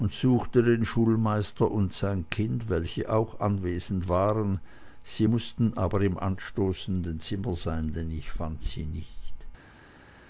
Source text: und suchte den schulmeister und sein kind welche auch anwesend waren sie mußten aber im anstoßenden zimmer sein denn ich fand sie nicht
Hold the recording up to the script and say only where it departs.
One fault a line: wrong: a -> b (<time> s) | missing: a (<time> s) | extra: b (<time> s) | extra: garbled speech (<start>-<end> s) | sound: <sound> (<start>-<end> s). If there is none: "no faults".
no faults